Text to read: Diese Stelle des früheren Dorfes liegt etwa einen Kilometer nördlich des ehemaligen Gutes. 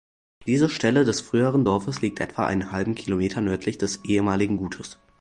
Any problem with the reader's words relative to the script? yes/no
yes